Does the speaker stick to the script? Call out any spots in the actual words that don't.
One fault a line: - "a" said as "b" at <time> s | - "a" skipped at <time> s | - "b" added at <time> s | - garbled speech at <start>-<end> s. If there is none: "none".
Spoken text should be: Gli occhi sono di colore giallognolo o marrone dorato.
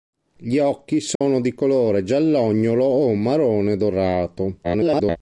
- garbled speech at 4.6-5.2 s